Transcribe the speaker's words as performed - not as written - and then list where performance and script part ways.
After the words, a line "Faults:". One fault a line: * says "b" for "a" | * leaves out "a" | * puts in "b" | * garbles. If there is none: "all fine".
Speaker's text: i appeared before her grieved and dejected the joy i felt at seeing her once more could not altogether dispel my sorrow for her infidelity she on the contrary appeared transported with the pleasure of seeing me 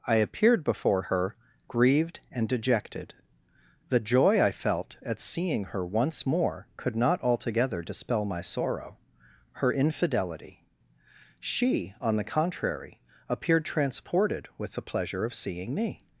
i appeared before her grieved and dejected the joy i felt at seeing her once more could not altogether dispel my sorrow her infidelity she on the contrary appeared transported with the pleasure of seeing me
Faults:
* leaves out "for"